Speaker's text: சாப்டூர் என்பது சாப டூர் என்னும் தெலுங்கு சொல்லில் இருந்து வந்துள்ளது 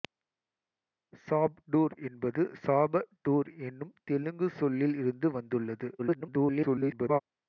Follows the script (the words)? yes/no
no